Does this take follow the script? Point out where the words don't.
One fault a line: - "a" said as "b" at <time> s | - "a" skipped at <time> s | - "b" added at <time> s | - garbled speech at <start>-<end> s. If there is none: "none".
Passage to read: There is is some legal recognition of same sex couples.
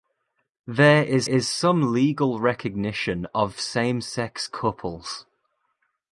none